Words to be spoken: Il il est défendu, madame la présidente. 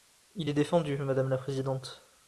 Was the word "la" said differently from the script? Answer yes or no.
no